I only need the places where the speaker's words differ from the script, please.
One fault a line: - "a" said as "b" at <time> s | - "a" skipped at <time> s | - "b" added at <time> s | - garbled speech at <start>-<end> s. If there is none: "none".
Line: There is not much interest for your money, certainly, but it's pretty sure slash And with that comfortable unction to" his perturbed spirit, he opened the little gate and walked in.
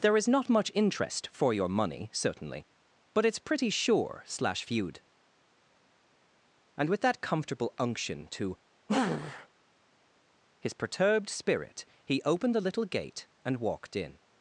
- "feud" added at 4.6 s